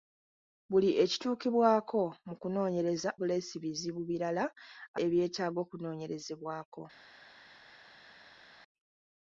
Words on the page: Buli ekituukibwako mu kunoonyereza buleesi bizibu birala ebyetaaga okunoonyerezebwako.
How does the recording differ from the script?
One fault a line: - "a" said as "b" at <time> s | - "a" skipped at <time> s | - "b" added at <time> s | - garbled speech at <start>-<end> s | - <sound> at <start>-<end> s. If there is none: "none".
none